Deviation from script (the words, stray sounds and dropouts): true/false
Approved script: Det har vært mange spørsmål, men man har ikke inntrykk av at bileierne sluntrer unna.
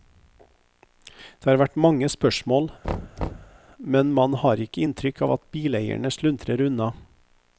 true